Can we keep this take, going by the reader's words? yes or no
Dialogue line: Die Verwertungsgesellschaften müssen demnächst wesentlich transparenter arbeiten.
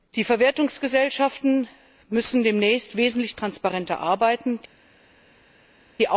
yes